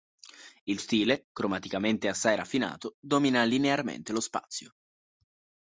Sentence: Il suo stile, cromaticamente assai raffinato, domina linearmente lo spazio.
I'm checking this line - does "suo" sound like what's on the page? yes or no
no